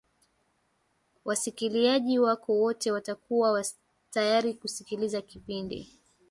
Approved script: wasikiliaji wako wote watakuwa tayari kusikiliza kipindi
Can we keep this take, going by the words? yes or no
yes